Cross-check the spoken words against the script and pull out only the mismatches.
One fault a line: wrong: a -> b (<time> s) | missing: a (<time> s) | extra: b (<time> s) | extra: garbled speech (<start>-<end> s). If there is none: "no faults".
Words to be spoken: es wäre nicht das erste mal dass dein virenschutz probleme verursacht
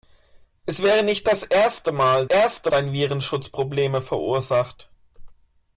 wrong: dass -> erste (2.2 s)